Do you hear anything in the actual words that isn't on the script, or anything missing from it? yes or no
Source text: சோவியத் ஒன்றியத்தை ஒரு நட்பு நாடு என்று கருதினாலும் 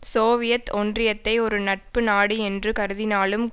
no